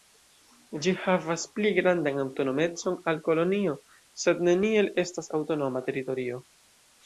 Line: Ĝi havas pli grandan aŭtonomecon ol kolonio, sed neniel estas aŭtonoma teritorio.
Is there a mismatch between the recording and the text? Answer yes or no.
no